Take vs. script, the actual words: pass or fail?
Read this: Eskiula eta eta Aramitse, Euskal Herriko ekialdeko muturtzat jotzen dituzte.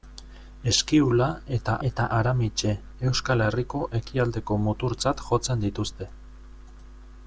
pass